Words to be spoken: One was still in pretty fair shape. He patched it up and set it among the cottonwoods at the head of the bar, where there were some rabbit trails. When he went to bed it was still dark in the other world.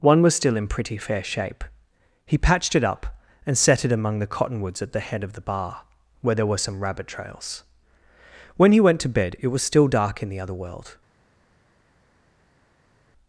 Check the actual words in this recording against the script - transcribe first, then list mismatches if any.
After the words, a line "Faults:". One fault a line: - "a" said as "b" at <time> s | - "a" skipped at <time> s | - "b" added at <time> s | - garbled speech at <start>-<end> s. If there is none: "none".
One was still in pretty fair shape. He patched it up and set it among the cottonwoods at the head of the bar, where there were some rabbit trails. When he went to bed it was still dark in the other world.
Faults:
none